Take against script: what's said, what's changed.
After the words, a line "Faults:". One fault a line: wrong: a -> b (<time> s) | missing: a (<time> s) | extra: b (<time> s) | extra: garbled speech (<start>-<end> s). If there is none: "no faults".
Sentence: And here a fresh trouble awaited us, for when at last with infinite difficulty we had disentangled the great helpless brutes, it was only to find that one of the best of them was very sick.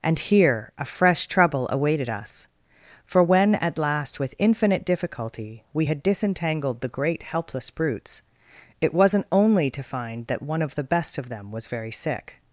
And here a fresh trouble awaited us, for when at last with infinite difficulty we had disentangled the great helpless brutes, it wasn't only to find that one of the best of them was very sick.
Faults:
wrong: was -> wasn't (8.9 s)